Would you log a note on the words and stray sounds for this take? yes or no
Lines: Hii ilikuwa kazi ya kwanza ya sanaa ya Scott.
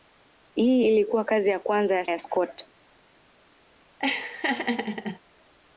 yes